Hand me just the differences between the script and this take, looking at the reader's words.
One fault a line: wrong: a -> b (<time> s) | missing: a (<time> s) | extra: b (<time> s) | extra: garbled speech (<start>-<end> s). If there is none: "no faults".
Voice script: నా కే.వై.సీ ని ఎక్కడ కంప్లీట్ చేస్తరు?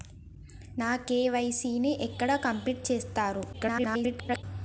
extra: garbled speech (3.5-4.4 s)